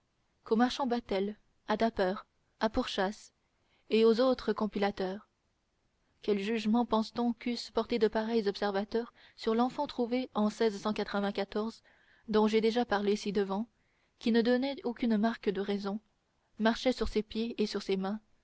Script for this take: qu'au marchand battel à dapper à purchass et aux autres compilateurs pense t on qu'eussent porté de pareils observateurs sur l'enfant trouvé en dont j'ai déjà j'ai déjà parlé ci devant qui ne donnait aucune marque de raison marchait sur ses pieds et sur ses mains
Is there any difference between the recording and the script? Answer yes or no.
yes